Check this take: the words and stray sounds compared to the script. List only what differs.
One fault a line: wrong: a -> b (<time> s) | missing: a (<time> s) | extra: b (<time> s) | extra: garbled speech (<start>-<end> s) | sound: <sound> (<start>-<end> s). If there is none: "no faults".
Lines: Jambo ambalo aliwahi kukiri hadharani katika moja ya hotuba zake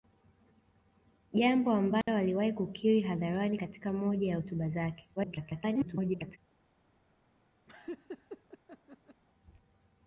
sound: dropout (2.0-2.1 s)
extra: garbled speech (5.2-6.4 s)
sound: laugh (7.7-9.2 s)